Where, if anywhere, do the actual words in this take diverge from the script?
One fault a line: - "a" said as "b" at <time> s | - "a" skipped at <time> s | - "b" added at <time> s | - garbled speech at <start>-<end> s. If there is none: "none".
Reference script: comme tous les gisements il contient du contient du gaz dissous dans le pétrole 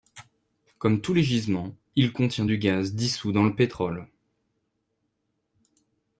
- "contient du" skipped at 2.6 s